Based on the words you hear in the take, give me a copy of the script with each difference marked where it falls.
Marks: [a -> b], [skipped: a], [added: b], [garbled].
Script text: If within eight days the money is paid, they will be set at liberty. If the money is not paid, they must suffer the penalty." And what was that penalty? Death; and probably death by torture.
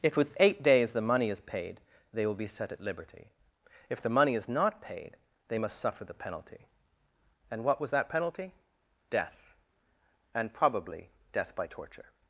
If [within -> with] eight days the money is paid, they will be set at liberty. If the money is not paid, they must suffer the penalty." And what was that penalty? Death; and probably death by torture.